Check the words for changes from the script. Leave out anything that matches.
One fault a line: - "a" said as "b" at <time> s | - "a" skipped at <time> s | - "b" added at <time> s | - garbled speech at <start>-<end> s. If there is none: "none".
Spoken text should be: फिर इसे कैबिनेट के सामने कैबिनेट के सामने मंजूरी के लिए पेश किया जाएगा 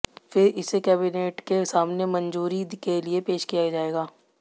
- "कैबिनेट के सामने" skipped at 2.0 s